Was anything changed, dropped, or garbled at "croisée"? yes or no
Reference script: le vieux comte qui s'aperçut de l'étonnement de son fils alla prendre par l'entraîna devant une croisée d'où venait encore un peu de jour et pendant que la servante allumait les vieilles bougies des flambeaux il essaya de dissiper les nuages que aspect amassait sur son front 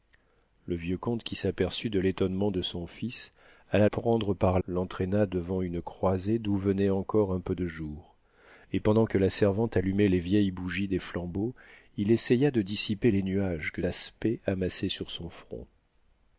no